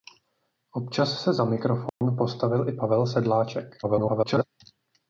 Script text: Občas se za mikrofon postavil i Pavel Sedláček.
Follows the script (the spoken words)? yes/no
no